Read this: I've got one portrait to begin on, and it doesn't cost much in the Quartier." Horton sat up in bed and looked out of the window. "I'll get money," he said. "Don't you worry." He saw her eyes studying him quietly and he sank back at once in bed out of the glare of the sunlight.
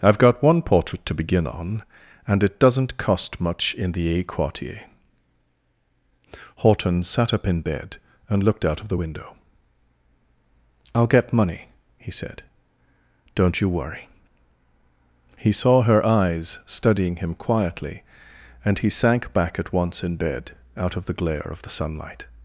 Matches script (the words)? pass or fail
fail